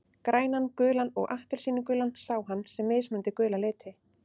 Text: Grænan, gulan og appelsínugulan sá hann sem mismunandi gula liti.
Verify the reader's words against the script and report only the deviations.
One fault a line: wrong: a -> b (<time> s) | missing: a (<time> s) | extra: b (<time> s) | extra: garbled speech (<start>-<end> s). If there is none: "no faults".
no faults